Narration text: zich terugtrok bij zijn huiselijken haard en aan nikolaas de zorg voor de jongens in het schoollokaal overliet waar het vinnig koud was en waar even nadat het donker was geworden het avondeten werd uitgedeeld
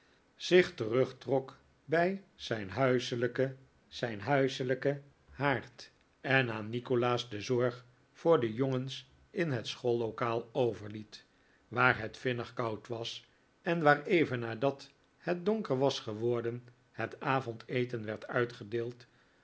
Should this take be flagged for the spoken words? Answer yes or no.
yes